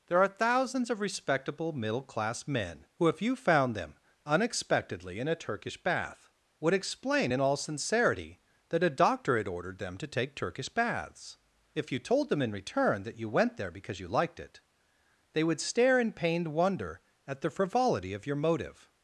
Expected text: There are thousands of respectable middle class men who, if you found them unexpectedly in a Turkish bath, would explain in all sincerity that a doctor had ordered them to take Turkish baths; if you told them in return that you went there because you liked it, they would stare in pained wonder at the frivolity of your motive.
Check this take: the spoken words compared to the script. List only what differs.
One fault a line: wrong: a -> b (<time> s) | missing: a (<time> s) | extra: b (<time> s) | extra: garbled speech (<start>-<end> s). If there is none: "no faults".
no faults